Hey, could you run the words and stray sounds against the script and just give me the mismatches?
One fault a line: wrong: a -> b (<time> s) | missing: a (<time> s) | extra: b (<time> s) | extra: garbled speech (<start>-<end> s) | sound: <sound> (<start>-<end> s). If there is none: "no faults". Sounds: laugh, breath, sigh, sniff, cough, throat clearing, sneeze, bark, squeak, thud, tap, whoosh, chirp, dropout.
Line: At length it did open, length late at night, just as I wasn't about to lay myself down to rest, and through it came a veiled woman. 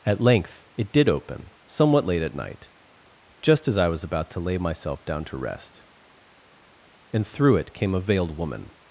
wrong: length -> somewhat (1.7 s)
wrong: wasn't -> was (3.9 s)